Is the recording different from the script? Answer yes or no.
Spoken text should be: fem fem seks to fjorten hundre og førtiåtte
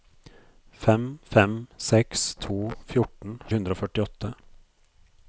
no